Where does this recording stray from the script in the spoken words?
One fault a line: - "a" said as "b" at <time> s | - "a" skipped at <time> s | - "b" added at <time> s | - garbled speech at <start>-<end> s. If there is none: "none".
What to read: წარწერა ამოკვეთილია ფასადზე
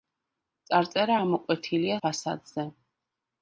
none